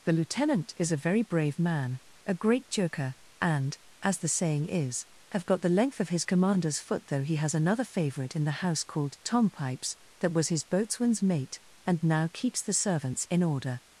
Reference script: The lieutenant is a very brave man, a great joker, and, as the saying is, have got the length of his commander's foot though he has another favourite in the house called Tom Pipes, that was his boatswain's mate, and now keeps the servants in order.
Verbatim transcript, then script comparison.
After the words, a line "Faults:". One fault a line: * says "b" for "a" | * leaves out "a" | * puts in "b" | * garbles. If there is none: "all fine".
The lieutenant is a very brave man, a great joker, and, as the saying is, have got the length of his commander's foot though he has another favourite in the house called Tom Pipes, that was his boatswain's mate, and now keeps the servants in order.
Faults:
all fine